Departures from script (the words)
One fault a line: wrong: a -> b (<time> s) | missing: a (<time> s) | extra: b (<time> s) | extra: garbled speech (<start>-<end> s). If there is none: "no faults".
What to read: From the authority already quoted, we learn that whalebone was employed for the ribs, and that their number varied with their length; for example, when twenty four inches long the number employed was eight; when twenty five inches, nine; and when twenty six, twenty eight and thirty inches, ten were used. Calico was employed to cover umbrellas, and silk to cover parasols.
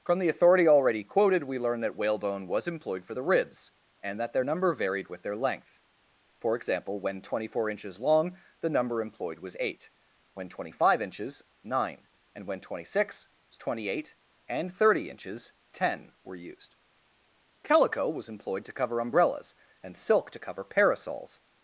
no faults